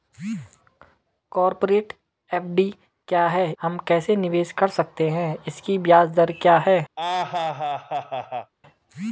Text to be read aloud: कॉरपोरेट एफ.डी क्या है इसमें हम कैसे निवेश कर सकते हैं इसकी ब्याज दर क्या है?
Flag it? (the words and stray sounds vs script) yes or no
yes